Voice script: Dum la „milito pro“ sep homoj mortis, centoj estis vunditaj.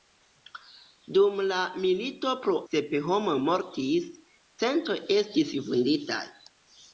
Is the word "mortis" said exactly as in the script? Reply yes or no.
yes